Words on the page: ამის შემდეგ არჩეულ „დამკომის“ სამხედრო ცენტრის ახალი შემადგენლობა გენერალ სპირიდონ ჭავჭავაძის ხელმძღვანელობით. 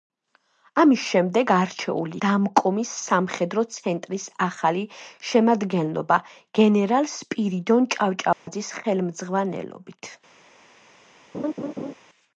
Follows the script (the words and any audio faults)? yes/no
no